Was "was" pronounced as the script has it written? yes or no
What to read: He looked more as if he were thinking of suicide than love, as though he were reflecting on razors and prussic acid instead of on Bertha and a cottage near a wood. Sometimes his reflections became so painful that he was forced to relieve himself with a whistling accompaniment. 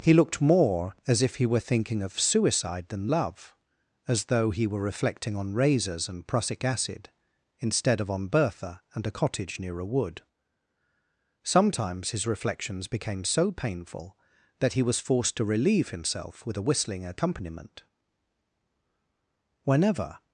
yes